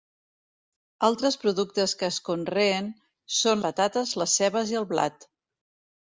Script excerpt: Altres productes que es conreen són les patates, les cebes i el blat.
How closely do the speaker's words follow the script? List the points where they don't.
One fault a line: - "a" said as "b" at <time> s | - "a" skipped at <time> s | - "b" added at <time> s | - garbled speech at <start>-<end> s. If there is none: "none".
- "les" skipped at 3.6 s